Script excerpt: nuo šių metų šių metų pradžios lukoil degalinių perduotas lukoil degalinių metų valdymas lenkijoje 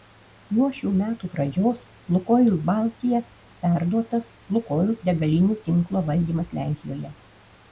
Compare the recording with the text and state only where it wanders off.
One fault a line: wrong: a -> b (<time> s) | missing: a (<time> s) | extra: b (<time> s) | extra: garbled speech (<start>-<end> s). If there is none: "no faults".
missing: šių metų (1.3 s)
wrong: degalinių -> baltija (2.7 s)
wrong: metų -> tinklo (5.7 s)